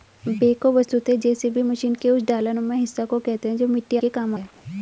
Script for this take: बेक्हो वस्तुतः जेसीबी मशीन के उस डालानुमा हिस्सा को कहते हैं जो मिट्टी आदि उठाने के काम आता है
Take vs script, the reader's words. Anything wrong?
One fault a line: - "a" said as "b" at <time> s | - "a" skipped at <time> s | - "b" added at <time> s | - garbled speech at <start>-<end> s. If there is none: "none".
- "आदि उठाने" skipped at 4.0 s
- "आता" skipped at 4.3 s